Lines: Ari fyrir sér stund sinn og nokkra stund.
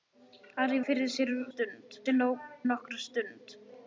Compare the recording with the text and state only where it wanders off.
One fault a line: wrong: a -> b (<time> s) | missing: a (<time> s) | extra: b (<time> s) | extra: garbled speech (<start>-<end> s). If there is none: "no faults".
no faults